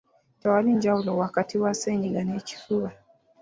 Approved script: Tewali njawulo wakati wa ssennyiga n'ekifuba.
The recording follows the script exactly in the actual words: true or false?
true